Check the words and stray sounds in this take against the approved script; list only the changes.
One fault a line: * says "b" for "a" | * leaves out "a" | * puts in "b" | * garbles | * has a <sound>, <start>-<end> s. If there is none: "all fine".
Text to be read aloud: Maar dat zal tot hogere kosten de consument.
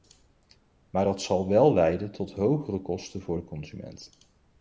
* puts in "wel leiden"
* puts in "voor"